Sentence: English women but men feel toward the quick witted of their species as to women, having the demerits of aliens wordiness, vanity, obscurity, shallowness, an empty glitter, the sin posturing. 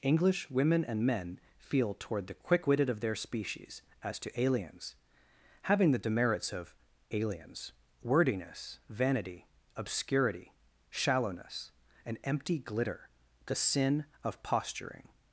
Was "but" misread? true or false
true